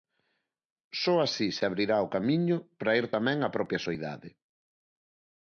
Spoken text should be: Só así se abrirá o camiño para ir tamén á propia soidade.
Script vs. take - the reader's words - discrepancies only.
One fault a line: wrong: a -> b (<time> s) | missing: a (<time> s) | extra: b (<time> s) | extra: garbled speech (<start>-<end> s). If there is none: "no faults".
no faults